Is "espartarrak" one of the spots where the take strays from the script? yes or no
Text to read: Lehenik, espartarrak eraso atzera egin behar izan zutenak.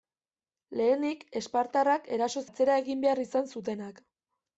no